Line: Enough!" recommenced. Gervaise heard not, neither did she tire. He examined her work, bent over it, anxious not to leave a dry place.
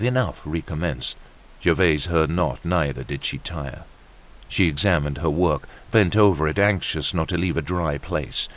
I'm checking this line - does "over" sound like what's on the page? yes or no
yes